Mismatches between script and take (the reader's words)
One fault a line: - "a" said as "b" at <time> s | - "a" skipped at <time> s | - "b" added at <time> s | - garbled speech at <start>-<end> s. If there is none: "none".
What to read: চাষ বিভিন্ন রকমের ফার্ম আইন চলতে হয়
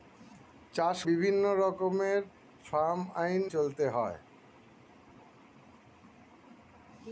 none